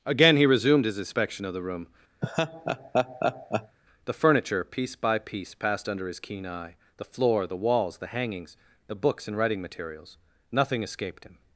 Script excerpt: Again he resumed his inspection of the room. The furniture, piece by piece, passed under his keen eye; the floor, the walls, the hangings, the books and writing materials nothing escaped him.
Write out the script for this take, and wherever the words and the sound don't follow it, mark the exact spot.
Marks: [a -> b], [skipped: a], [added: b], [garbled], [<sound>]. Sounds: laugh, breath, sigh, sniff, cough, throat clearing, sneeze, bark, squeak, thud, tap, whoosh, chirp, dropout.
Again he resumed his inspection of the room. [laugh] The furniture, piece by piece, passed under his keen eye; the floor, the walls, the hangings, the books and writing materials nothing escaped him.